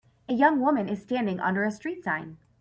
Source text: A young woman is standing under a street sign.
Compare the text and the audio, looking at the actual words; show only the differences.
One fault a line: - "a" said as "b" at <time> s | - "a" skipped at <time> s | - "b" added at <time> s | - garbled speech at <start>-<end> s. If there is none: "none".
none